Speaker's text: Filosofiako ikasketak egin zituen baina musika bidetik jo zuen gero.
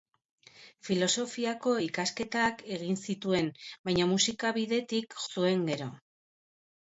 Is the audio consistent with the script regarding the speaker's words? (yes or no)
no